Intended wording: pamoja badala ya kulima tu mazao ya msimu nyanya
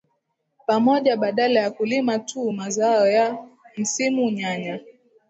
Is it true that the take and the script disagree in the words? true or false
false